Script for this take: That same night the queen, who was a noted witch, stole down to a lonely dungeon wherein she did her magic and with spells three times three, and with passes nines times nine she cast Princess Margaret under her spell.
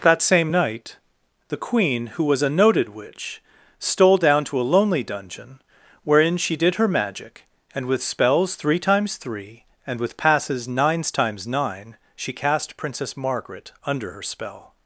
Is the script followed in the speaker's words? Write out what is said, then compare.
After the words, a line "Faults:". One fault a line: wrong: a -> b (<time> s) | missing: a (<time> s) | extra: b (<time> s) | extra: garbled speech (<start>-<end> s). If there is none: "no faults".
That same night the queen, who was a noted witch, stole down to a lonely dungeon wherein she did her magic and with spells three times three, and with passes nines times nine she cast Princess Margaret under her spell.
Faults:
no faults